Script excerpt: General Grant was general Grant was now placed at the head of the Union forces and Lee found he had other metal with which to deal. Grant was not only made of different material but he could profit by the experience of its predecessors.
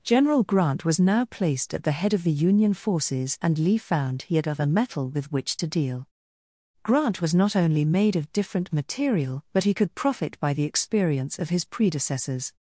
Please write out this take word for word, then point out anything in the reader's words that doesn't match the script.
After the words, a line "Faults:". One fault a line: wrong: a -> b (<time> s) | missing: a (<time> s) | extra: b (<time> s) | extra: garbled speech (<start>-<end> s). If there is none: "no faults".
General Grant was now placed at the head of the Union forces and Lee found he had other metal with which to deal. Grant was not only made of different material but he could profit by the experience of his predecessors.
Faults:
missing: general Grant was (1.0 s)
wrong: its -> his (11.5 s)